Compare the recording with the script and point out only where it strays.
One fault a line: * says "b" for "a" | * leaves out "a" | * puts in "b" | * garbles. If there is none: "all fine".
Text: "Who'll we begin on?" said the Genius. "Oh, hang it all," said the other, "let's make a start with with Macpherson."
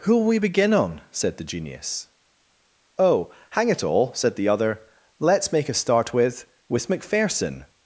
all fine